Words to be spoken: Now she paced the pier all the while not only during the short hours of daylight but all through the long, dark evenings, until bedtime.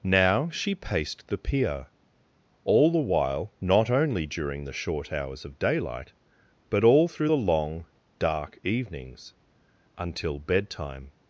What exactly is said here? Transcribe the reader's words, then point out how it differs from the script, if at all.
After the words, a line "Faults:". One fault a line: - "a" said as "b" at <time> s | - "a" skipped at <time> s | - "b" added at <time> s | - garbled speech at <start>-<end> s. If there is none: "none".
Now she paced the pier all the while not only during the short hours of daylight but all through the long, dark evenings, until bedtime.
Faults:
none